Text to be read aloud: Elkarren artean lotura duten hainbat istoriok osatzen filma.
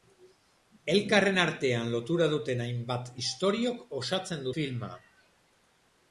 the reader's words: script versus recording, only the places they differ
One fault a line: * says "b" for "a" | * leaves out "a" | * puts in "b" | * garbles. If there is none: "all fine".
all fine